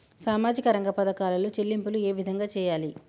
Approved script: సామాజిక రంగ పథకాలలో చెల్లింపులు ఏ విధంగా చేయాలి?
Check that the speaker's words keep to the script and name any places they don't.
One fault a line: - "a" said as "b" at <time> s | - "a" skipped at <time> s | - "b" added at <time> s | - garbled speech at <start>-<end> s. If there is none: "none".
none